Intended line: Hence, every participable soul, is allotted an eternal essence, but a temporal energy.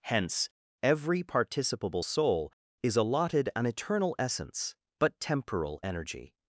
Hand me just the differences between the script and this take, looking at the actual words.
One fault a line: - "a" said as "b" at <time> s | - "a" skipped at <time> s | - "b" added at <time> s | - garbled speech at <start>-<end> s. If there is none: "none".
- "a" skipped at 5.2 s